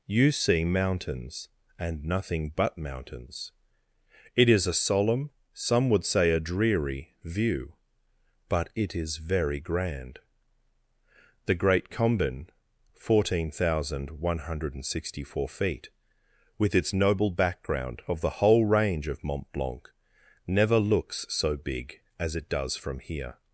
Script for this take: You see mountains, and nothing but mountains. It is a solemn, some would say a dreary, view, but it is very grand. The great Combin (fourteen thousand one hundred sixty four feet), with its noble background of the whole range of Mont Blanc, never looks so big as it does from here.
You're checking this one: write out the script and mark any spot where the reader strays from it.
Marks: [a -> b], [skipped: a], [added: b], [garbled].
You see mountains, and nothing but mountains. It is a solemn, some would say a dreary, view, but it is very grand. The great Combin (fourteen thousand one hundred sixty four feet), with its noble background of the whole range of Mont Blanc, never looks so big as it does from here.